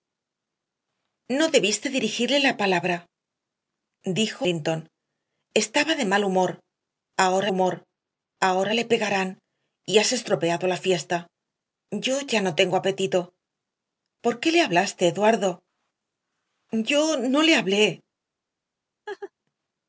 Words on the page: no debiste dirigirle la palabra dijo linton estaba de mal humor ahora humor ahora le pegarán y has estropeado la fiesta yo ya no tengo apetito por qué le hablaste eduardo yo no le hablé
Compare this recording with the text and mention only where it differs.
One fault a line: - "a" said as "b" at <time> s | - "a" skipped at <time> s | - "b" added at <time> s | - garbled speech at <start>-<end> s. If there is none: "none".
none